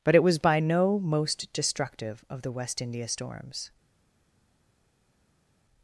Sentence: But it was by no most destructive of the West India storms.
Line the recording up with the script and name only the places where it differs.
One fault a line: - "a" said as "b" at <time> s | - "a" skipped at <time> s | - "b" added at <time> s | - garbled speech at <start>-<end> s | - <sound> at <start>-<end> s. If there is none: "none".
none